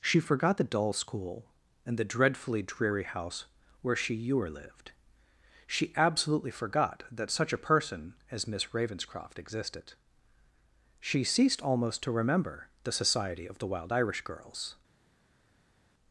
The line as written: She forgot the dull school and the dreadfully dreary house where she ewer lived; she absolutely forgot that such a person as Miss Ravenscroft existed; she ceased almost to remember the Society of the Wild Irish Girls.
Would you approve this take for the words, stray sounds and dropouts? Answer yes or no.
yes